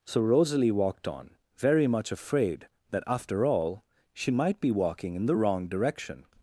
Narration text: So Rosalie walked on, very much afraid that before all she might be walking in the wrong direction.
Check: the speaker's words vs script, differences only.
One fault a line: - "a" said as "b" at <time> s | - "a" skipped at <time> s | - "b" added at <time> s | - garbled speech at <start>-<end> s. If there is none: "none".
- "before" said as "after" at 3.1 s